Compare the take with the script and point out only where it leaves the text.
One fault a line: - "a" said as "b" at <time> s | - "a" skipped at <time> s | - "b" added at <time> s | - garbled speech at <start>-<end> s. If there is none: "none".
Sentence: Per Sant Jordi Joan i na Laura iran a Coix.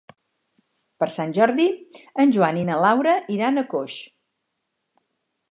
- "en" added at 2.2 s